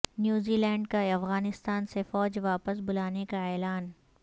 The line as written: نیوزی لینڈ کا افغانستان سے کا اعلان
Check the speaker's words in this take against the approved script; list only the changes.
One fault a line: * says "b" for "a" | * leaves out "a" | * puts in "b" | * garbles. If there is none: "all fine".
* puts in "فوج واپس بلانے"